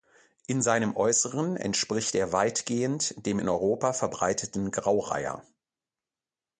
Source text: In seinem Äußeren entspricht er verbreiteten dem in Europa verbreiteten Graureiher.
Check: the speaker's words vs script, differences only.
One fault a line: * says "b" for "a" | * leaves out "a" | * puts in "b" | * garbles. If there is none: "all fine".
* says "weitgehend" for "verbreiteten"